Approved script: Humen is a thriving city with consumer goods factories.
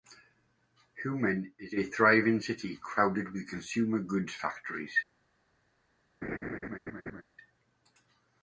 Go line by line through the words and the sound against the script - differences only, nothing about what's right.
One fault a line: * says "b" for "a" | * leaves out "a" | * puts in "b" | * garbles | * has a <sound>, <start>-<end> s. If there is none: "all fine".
* puts in "crowded"
* has a laugh, 6.2-7.2 s